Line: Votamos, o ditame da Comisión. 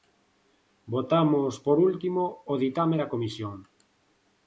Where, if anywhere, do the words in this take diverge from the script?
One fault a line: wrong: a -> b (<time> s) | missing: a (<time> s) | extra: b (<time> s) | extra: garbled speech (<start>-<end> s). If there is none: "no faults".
extra: por último (1.6 s)